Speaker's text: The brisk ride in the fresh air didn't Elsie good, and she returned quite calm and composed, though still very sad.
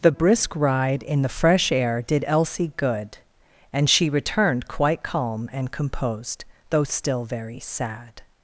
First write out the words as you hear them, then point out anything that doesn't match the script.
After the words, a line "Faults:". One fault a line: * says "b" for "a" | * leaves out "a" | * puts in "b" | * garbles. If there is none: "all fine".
The brisk ride in the fresh air did Elsie good, and she returned quite calm and composed, though still very sad.
Faults:
* says "did" for "didn't"